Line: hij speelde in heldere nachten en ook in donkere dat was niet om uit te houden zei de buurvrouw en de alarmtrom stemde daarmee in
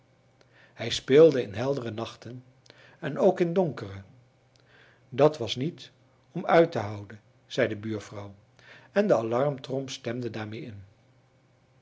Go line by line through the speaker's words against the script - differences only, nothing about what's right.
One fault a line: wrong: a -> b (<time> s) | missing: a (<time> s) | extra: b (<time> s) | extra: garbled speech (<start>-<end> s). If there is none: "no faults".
no faults